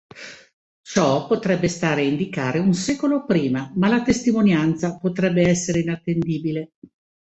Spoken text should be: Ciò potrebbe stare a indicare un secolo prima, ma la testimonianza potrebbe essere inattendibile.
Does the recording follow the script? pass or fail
pass